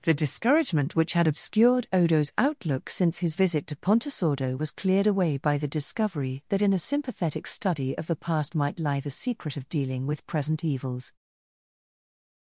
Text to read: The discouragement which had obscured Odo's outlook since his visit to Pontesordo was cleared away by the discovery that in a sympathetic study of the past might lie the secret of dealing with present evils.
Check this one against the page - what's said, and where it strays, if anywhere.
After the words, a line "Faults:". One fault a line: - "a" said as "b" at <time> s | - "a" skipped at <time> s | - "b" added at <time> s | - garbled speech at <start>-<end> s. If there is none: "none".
The discouragement which had obscured Odo's outlook since his visit to Pontesordo was cleared away by the discovery that in a sympathetic study of the past might lie the secret of dealing with present evils.
Faults:
none